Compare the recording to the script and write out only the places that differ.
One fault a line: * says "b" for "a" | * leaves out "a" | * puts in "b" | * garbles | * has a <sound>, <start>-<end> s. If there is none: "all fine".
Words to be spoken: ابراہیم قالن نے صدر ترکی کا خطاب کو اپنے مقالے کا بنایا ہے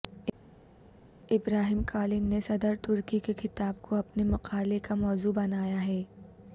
* says "کے" for "کا"
* puts in "موضوع"